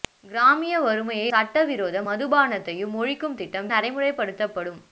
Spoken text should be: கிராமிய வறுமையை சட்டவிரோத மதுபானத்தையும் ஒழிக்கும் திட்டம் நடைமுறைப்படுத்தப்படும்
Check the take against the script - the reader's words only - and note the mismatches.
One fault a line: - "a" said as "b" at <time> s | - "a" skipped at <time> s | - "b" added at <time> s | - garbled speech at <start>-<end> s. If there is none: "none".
none